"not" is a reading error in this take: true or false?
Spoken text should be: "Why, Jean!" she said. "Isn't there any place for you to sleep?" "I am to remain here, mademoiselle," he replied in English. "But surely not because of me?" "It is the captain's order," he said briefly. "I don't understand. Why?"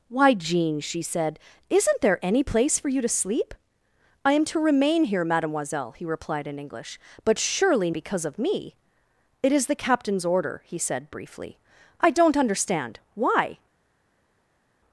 true